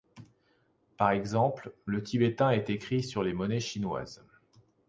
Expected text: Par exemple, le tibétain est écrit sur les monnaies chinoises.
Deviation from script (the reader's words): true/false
false